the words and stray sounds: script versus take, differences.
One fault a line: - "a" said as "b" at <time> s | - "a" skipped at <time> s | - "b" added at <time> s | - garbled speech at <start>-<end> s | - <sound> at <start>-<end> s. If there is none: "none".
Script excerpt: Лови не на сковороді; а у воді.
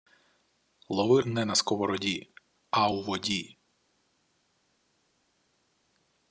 none